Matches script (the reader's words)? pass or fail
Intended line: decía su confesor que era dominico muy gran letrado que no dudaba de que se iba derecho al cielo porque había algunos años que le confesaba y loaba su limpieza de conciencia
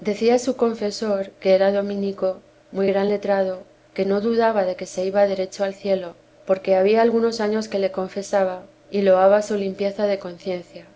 pass